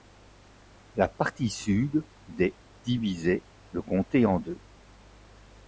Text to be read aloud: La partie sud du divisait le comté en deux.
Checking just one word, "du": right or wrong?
wrong